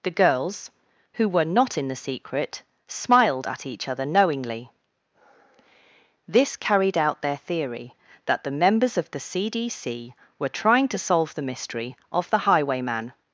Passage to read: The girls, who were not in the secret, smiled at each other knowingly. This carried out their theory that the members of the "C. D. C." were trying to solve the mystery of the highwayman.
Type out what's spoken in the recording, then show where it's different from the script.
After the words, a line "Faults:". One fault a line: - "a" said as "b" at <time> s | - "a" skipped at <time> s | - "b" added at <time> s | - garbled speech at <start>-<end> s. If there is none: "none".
The girls, who were not in the secret, smiled at each other knowingly. This carried out their theory that the members of the "C. D. C." were trying to solve the mystery of the highwayman.
Faults:
none